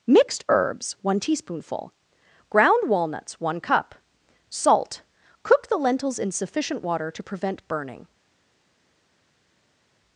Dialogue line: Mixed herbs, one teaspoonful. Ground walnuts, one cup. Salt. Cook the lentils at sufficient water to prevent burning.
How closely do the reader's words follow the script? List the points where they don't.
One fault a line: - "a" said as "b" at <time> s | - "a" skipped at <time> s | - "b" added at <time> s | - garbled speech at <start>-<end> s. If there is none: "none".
- "at" said as "in" at 6.2 s